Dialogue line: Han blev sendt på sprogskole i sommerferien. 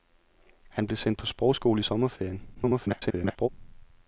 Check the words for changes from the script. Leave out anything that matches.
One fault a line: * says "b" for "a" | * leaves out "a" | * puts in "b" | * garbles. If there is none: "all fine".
* garbles